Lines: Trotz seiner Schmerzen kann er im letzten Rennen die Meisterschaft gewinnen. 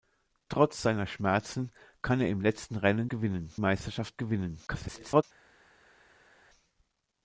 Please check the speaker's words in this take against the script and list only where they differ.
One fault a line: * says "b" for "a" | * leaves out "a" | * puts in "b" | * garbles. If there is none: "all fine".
* says "gewinnen" for "die"
* garbles